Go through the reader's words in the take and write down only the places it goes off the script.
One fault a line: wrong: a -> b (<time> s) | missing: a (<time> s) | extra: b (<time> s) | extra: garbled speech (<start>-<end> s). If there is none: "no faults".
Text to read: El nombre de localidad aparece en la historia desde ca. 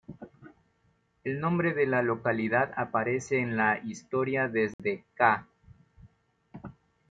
extra: la (1.9 s)